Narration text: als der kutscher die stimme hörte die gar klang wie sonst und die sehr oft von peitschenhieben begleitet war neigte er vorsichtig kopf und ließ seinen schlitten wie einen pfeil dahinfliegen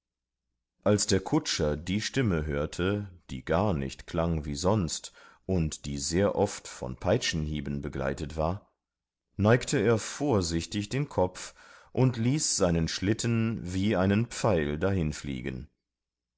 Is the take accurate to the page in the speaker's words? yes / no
no